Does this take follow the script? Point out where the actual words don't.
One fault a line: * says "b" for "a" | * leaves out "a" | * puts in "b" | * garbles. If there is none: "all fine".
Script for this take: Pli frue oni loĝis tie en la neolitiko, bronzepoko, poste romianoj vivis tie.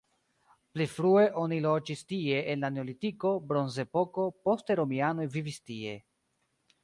all fine